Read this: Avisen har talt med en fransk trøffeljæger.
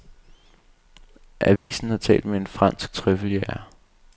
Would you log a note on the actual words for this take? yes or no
no